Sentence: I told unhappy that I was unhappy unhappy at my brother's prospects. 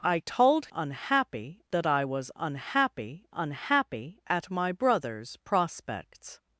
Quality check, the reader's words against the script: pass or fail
pass